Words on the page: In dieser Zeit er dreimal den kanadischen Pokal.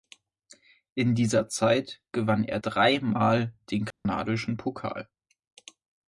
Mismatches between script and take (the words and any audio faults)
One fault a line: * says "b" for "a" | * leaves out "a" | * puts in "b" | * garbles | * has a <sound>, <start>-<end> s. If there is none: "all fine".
* puts in "gewann"
* has a dropout, 3.9-4.1 s